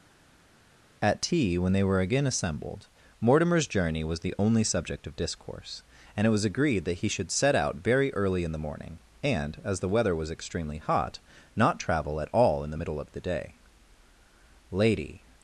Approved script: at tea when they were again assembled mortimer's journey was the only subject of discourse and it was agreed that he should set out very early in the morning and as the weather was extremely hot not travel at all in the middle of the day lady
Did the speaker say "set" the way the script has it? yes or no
yes